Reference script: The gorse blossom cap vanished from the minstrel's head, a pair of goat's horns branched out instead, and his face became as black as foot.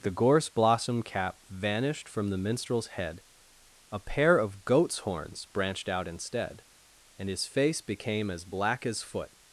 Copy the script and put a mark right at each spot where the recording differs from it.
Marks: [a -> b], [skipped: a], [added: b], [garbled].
The gorse blossom cap vanished from the minstrel's head, a pair of goat's horns branched out instead, and his face became as black as foot.